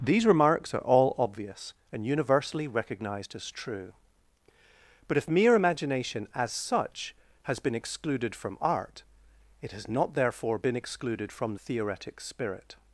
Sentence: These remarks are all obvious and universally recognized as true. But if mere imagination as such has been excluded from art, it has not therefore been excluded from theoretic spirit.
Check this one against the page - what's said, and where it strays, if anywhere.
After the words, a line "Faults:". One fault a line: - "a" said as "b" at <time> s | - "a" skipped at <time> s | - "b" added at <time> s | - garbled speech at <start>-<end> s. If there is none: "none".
These remarks are all obvious and universally recognized as true. But if mere imagination as such has been excluded from art, it has not therefore been excluded from theoretic spirit.
Faults:
none